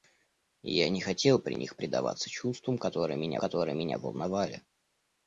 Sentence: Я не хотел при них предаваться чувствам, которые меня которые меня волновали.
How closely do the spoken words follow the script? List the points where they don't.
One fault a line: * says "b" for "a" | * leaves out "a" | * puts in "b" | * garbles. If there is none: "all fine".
all fine